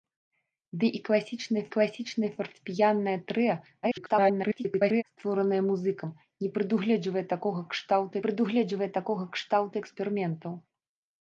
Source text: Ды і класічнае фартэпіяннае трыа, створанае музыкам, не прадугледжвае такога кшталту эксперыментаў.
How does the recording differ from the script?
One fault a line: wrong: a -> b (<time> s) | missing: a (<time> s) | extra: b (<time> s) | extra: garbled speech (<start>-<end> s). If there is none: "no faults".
extra: класічнае (1.8 s)
extra: garbled speech (3.8-5.0 s)
extra: прадугледжвае такога кшталту (8.3 s)